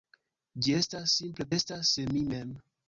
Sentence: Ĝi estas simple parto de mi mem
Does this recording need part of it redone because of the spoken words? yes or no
yes